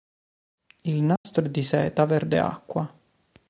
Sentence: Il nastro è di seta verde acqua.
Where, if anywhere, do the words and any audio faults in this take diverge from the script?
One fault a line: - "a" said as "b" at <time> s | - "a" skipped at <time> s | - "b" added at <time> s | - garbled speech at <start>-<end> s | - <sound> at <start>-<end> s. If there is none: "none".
- dropout at 1.2-1.3 s